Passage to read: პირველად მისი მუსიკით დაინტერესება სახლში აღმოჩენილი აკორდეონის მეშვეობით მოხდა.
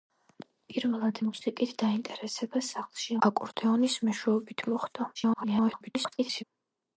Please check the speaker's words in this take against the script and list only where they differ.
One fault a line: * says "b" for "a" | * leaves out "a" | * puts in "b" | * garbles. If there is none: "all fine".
* leaves out "მისი"
* leaves out "აღმოჩენილი"
* garbles